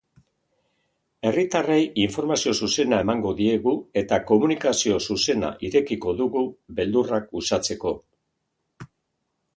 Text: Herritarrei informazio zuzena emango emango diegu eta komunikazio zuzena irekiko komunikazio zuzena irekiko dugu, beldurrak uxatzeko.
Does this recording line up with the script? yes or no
no